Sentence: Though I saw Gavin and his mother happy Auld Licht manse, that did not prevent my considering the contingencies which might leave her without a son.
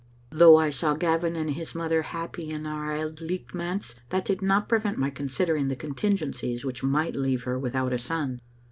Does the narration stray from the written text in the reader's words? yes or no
yes